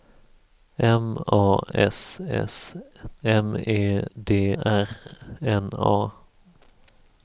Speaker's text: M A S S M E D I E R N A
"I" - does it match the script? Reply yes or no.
no